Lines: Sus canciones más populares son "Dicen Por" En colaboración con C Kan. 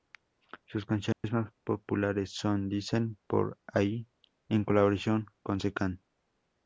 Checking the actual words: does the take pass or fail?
fail